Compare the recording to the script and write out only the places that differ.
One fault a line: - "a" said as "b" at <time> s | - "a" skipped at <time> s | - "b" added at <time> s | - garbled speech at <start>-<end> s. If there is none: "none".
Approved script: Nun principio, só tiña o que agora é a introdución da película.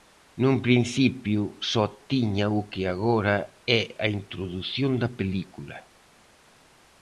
none